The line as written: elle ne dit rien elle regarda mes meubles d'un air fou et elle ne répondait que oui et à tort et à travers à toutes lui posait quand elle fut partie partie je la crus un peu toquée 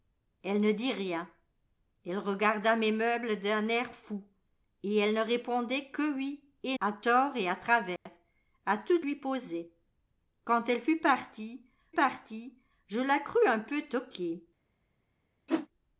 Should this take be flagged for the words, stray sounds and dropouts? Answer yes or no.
yes